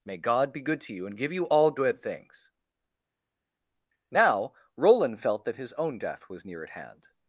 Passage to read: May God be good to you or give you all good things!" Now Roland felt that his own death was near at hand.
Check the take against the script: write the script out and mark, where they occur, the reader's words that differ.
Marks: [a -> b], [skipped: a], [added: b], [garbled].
May God be good to you [or -> and] give you all good things!" Now Roland felt that his own death was near at hand.